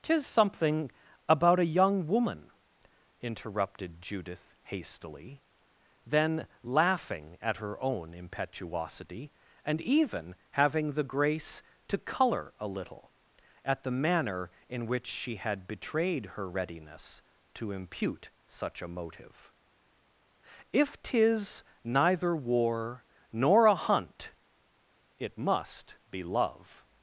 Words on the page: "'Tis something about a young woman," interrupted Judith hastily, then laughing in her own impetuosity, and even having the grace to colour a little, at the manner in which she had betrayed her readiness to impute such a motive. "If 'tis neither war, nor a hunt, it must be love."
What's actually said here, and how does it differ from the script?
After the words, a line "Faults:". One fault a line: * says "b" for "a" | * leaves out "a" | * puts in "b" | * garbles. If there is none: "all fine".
"'Tis something about a young woman," interrupted Judith hastily, then laughing at her own impetuosity, and even having the grace to colour a little, at the manner in which she had betrayed her readiness to impute such a motive. "If 'tis neither war, nor a hunt, it must be love."
Faults:
* says "at" for "in"